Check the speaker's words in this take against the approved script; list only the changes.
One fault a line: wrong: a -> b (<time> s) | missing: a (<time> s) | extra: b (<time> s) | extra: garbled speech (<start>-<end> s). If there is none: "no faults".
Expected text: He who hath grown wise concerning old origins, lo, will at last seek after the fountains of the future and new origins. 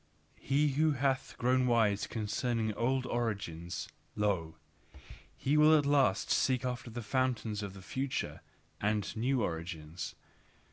extra: he (5.4 s)